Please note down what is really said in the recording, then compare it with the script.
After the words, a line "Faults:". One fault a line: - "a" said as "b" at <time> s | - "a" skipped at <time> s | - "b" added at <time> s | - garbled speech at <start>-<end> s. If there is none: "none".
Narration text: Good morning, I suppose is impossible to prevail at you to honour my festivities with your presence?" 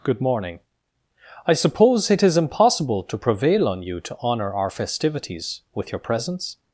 Good morning, I suppose it is impossible to prevail on you to honour our festivities with your presence?"
Faults:
- "it" added at 2.1 s
- "at" said as "on" at 3.7 s
- "my" said as "our" at 4.5 s